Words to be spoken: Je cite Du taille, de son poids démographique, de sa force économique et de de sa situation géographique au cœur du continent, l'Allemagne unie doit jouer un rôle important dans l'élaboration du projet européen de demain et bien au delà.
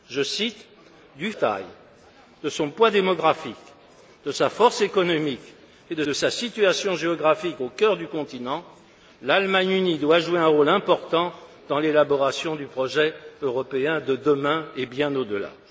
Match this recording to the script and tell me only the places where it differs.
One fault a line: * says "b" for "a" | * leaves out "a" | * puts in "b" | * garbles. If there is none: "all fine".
all fine